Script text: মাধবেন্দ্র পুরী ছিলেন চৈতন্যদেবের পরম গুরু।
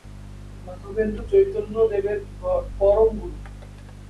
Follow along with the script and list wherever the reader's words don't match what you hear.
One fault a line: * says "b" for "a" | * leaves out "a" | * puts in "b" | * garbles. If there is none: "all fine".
* leaves out "পুরী ছিলেন"